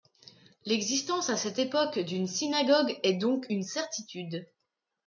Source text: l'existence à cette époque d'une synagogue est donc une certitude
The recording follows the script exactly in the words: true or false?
true